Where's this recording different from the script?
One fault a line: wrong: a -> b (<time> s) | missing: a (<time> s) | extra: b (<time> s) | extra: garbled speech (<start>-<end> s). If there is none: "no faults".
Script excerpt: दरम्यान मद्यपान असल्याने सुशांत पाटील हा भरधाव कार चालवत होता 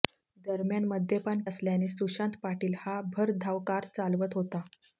no faults